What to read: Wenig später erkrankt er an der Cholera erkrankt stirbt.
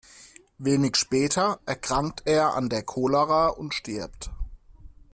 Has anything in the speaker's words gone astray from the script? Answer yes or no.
yes